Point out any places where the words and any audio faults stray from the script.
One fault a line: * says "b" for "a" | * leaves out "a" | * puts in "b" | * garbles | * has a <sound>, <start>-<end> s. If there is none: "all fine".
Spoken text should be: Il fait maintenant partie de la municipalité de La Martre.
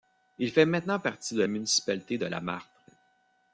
* leaves out "la"